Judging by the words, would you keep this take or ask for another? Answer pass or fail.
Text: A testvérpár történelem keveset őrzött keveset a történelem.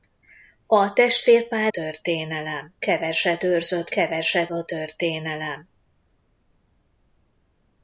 pass